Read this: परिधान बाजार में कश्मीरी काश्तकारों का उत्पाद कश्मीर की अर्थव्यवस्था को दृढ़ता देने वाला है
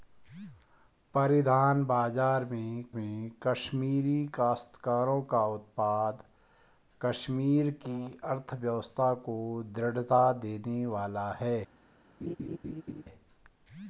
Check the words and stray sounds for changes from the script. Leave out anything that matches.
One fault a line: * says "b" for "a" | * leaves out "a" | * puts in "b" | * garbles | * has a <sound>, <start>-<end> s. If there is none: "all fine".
* puts in "में"
* has a laugh, 12.2-13.0 s